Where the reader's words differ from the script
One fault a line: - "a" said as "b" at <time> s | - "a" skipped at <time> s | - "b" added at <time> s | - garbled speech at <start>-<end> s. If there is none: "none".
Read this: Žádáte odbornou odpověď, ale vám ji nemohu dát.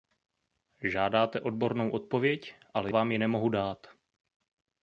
none